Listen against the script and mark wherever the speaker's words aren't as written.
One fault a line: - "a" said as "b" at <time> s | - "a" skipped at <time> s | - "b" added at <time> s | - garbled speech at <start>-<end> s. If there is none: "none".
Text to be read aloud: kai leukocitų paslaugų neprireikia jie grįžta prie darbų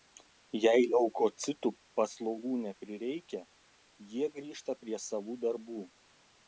- "kai" said as "jei" at 0.6 s
- "savų" added at 5.1 s